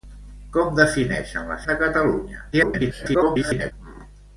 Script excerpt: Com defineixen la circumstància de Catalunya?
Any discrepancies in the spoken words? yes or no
yes